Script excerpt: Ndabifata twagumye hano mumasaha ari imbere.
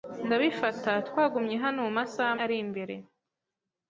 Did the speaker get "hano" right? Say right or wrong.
right